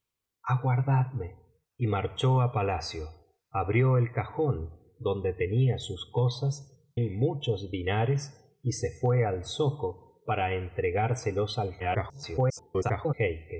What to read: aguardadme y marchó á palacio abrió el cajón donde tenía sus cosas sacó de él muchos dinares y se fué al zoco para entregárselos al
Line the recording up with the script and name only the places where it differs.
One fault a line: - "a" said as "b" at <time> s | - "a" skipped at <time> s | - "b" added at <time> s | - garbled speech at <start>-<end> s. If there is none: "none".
- "sacó de" skipped at 6.9 s
- garbled speech at 11.8-13.1 s